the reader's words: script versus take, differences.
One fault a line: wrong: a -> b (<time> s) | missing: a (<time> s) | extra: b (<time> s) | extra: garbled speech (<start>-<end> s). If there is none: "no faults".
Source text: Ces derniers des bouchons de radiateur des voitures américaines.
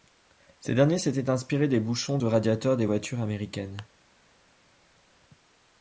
extra: s'étaient inspirés (1.0 s)